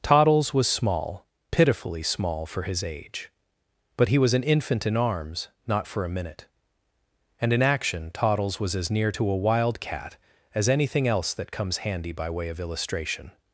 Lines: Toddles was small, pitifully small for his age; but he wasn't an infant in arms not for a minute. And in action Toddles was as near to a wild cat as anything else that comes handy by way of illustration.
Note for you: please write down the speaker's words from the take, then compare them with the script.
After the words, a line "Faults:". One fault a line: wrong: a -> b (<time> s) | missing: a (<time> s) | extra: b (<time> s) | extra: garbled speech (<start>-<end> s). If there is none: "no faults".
Toddles was small, pitifully small for his age; but he was an infant in arms not for a minute. And in action Toddles was as near to a wild cat as anything else that comes handy by way of illustration.
Faults:
wrong: wasn't -> was (4.2 s)